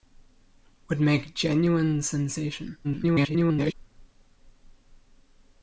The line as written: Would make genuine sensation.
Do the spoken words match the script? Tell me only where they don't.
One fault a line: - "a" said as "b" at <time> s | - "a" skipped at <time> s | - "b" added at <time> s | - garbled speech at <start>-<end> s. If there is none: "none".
- garbled speech at 2.8-3.7 s